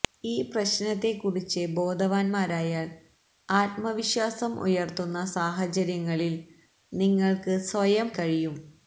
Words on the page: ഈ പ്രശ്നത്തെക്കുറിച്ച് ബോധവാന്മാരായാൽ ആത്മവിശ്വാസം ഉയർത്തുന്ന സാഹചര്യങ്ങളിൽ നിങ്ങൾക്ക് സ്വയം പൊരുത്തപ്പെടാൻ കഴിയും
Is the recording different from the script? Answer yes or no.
yes